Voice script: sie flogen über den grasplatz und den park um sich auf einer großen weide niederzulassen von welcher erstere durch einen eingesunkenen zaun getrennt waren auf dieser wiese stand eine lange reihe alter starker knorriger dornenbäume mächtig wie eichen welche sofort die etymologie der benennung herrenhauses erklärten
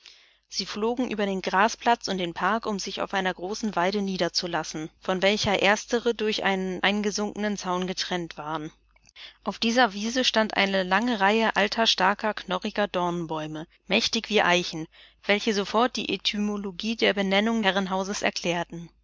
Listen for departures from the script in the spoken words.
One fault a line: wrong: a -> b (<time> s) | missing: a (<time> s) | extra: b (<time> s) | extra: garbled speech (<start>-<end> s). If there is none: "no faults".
no faults